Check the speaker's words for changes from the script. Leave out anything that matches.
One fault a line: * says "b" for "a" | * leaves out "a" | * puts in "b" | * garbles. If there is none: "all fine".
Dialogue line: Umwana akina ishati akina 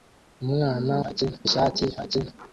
all fine